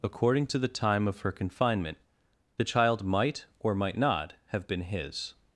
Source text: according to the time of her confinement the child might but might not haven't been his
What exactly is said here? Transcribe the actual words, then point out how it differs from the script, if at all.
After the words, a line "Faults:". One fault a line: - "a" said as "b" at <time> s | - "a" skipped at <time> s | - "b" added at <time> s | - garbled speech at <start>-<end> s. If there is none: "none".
according to the time of her confinement the child might or might not have been his
Faults:
- "but" said as "or" at 3.6 s
- "haven't" said as "have" at 4.5 s